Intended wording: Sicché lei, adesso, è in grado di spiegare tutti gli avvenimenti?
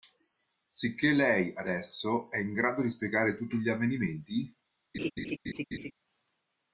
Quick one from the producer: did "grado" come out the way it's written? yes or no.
yes